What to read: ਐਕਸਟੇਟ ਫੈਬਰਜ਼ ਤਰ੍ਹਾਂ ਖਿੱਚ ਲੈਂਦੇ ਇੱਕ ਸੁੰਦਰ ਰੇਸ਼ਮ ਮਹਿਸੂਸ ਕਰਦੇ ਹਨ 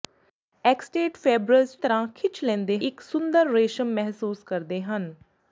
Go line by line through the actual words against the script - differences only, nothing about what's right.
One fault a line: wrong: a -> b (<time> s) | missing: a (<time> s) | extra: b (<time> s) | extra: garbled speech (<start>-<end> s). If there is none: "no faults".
no faults